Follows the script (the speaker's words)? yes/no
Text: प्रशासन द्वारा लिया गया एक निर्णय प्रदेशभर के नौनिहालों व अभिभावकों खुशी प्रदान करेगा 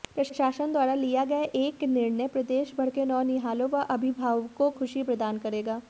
yes